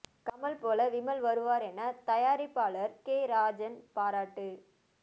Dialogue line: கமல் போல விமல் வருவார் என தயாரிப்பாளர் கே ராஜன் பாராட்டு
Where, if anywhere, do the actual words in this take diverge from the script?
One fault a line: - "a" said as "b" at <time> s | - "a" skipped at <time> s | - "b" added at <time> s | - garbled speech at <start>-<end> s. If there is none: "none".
none